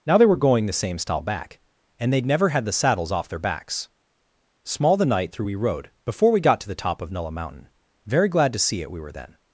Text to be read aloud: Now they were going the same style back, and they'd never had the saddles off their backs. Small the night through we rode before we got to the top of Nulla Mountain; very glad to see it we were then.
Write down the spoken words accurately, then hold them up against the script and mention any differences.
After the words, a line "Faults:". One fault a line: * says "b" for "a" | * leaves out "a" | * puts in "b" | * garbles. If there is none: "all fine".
Now they were going the same style back, and they'd never had the saddles off their backs. Small the night through we rode before we got to the top of Nulla Mountain; very glad to see it we were then.
Faults:
all fine